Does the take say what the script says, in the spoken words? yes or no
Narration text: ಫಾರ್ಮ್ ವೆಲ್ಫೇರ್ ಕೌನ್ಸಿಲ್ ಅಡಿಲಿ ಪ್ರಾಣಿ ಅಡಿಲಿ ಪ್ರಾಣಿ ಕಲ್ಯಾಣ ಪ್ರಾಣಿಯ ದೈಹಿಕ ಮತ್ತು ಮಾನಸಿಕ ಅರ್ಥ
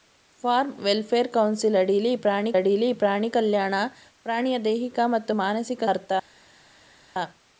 yes